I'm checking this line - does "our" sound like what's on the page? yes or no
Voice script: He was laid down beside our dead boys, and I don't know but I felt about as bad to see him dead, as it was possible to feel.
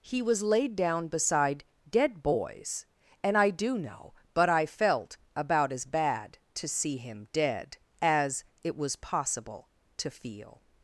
no